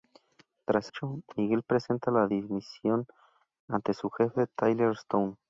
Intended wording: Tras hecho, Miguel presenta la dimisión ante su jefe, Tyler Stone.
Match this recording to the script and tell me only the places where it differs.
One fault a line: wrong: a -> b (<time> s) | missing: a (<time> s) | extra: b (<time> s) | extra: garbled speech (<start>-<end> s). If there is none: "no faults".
no faults